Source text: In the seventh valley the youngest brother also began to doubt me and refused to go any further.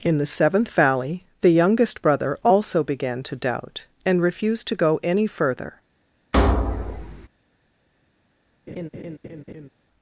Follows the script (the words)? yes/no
no